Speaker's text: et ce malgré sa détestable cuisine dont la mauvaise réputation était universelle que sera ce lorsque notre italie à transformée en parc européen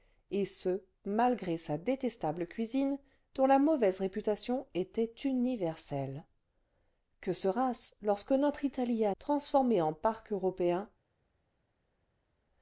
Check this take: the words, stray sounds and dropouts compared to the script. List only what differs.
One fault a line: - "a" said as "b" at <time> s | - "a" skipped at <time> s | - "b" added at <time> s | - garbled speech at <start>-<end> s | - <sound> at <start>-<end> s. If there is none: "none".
none